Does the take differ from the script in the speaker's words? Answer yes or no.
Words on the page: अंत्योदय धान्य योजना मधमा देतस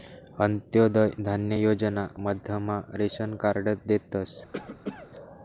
yes